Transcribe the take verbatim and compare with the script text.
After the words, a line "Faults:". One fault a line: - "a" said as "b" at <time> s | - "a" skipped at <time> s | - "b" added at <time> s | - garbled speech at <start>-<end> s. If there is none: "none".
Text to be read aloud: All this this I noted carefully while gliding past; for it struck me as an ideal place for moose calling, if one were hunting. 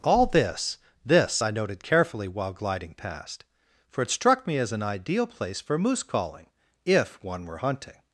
All this this I noted carefully while gliding past; for it struck me as an ideal place for moose calling, if one were hunting.
Faults:
none